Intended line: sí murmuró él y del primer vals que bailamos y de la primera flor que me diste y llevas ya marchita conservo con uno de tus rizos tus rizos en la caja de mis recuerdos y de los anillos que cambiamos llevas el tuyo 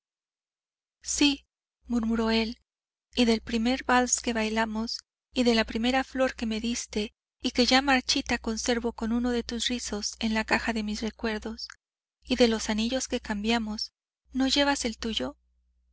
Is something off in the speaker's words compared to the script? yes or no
yes